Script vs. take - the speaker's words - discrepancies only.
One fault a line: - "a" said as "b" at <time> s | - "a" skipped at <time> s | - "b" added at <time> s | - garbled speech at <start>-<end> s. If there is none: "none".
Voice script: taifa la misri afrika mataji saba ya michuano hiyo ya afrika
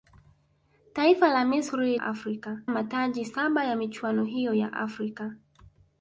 none